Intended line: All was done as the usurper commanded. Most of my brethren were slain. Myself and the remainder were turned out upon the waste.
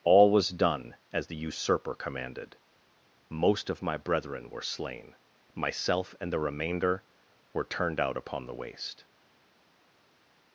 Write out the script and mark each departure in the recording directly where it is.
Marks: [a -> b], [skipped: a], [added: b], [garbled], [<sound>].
All was done as the usurper commanded. Most of my brethren were slain. Myself and the remainder were turned out upon the waste.